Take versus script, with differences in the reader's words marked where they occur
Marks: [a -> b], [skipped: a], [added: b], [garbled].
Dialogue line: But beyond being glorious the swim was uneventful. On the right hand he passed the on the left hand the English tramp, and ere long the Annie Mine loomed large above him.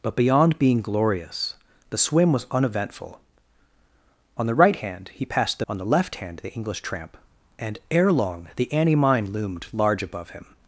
But beyond being glorious the swim was uneventful. On the right hand he passed the on the left hand the English tramp, and ere long the Annie Mine loomed large above him.